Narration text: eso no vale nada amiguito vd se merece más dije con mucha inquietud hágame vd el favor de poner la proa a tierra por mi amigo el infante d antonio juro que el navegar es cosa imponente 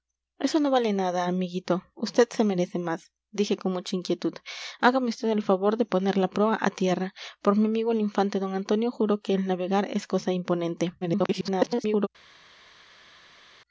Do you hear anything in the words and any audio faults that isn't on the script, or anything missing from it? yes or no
yes